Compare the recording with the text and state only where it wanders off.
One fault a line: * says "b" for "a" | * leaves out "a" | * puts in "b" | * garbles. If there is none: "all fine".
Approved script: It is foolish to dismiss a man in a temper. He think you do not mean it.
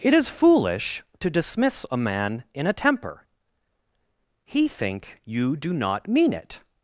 all fine